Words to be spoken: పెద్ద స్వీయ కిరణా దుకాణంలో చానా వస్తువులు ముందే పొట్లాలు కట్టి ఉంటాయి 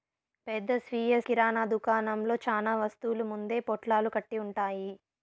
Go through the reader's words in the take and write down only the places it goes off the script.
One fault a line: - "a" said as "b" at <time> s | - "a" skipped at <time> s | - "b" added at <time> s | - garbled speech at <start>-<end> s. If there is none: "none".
none